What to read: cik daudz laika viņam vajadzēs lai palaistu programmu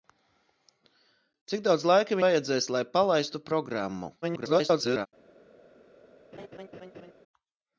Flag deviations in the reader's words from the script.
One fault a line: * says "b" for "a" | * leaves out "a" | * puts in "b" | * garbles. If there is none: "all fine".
* leaves out "viņam"
* garbles